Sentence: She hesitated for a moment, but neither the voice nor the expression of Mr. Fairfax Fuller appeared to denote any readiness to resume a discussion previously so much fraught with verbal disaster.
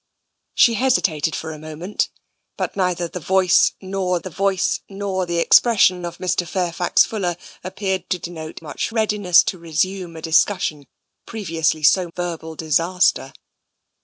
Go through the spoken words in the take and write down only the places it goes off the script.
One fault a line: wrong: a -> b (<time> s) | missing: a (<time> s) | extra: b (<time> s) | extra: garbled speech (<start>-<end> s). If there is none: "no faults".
extra: voice nor the (4.3 s)
wrong: any -> much (8.6 s)
missing: much fraught with (12.1 s)